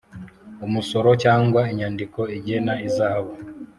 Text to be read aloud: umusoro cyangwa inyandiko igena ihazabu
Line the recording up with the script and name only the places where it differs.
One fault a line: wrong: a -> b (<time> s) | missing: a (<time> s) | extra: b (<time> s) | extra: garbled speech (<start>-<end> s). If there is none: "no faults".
no faults